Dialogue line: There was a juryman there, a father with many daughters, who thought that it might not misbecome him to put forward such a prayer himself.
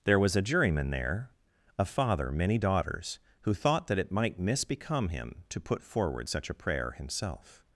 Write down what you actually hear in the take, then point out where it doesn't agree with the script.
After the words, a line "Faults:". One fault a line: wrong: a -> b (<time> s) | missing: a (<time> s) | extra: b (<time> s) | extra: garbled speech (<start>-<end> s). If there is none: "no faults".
There was a juryman there, a father many daughters, who thought that it might misbecome him to put forward such a prayer himself.
Faults:
missing: with (2.3 s)
missing: not (4.4 s)